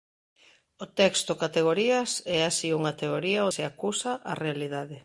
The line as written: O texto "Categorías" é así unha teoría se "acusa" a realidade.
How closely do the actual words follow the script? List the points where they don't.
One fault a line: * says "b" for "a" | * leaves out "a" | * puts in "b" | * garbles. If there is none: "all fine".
all fine